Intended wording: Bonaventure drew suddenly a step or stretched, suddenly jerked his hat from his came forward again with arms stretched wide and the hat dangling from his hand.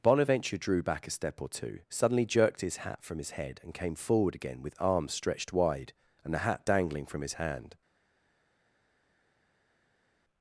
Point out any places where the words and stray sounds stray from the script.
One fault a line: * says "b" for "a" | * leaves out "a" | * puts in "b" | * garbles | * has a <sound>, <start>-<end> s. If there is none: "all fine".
* says "back" for "suddenly"
* says "two" for "stretched"
* puts in "head and"